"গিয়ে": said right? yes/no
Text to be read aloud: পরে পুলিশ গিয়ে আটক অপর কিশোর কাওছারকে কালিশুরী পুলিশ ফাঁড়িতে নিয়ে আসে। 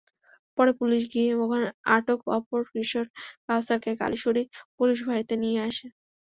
yes